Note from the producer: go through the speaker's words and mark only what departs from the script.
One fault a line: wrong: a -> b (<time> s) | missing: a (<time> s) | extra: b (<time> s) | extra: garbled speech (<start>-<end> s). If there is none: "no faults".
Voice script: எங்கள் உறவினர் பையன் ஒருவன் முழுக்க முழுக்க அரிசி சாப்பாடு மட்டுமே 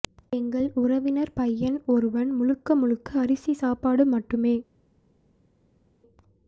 no faults